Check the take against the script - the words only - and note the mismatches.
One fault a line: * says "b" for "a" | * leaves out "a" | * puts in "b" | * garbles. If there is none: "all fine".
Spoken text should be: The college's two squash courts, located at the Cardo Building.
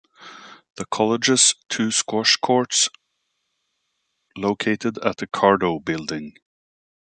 all fine